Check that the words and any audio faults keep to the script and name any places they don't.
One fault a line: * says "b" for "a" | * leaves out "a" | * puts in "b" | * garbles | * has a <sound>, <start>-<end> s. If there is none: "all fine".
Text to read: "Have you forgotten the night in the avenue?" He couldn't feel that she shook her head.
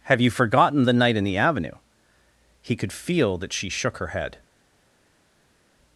* says "could" for "couldn't"